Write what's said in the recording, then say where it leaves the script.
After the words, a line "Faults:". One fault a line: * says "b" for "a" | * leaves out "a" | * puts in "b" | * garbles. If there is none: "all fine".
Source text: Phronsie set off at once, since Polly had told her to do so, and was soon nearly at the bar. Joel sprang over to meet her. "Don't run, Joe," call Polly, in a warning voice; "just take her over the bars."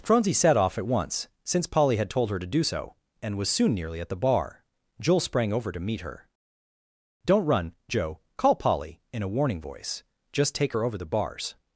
Phronsie set off at once, since Polly had told her to do so, and was soon nearly at the bar. Joel sprang over to meet her. "Don't run, Joe," call Polly, in a warning voice; "just take her over the bars."
Faults:
all fine